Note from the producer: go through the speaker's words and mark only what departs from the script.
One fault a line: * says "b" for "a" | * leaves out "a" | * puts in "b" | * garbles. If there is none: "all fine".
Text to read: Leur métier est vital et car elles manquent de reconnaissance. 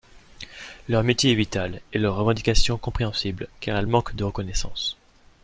* puts in "leurs revendications compréhensibles"